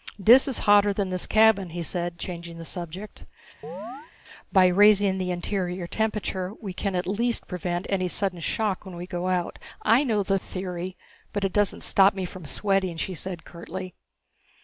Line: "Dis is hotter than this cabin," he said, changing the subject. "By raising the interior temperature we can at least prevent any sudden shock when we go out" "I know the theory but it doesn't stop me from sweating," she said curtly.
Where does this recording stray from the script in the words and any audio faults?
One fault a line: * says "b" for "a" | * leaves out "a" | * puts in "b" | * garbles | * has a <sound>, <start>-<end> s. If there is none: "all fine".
* has a chirp, 3.6-4.1 s